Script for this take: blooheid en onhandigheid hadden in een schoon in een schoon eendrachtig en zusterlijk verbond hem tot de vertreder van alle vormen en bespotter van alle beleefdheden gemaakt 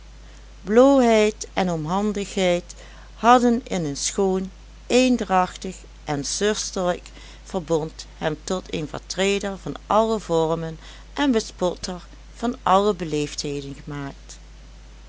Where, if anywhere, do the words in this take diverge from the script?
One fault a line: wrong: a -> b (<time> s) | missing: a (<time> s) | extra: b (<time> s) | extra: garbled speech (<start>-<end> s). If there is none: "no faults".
missing: in een schoon (4.5 s)
wrong: de -> een (8.7 s)